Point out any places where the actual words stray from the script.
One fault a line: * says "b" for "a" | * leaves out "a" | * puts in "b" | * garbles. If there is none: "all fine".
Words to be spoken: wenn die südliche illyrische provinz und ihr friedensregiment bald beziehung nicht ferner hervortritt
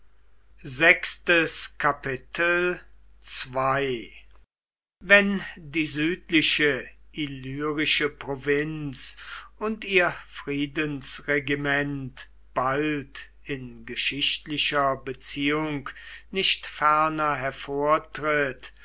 * puts in "in geschichtlicher"